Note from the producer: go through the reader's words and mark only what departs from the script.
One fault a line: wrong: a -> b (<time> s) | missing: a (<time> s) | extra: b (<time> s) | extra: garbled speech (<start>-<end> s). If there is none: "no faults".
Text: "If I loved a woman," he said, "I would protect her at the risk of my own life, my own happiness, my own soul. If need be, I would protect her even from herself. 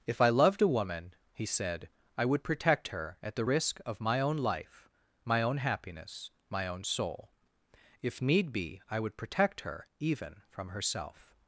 no faults